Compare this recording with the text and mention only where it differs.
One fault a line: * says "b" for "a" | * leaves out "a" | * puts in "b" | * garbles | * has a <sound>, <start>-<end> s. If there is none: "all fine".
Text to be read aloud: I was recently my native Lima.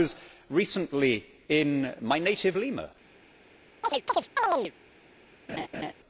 * puts in "in"
* has a chirp, 3.8-4.7 s
* has a laugh, 5.5-5.9 s